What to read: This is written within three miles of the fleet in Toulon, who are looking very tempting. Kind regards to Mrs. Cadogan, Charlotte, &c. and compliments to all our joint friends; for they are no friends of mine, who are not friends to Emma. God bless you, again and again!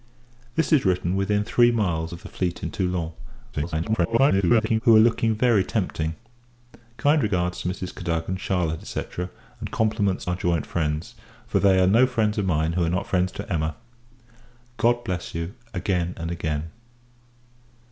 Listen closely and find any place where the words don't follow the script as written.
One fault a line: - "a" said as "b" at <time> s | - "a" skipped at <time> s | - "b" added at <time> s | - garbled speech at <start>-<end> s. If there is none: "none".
- garbled speech at 3.5-4.8 s
- "to all" skipped at 10.3 s